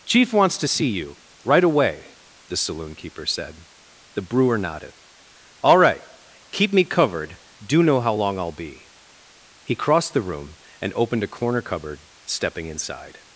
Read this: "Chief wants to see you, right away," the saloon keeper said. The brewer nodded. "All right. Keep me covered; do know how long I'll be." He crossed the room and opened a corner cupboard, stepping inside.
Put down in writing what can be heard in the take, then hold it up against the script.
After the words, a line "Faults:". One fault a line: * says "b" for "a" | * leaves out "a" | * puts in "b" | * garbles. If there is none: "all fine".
"Chief wants to see you, right away," the saloon keeper said. The brewer nodded. "All right. Keep me covered; do know how long I'll be." He crossed the room and opened a corner cupboard, stepping inside.
Faults:
all fine